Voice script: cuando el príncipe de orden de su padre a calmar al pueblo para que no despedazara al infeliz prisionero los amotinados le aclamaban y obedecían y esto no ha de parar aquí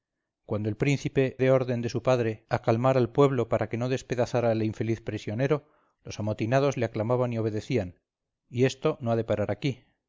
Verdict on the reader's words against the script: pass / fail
pass